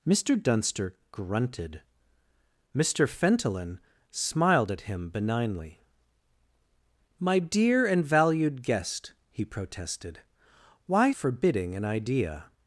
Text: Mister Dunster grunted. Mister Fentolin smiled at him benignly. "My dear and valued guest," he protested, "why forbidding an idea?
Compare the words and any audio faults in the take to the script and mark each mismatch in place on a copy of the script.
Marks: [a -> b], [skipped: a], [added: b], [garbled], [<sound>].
Mister Dunster grunted. Mister Fentolin smiled at him benignly. "My dear and valued guest," he protested, "why forbidding an idea?